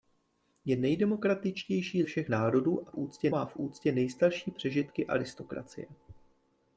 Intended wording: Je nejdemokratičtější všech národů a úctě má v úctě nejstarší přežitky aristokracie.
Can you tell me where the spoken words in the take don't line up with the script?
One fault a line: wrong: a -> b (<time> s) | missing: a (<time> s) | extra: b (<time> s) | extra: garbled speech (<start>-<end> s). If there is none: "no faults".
no faults